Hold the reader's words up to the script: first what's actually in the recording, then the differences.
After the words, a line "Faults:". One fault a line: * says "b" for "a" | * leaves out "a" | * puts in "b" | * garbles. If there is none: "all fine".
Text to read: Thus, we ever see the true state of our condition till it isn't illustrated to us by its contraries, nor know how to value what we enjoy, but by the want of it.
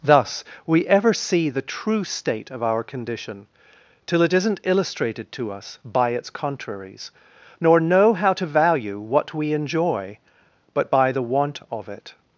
Thus, we ever see the true state of our condition till it isn't illustrated to us by its contraries, nor know how to value what we enjoy, but by the want of it.
Faults:
all fine